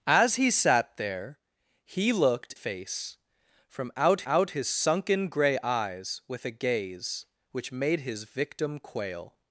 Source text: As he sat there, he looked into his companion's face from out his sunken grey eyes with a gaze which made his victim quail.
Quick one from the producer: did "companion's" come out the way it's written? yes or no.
no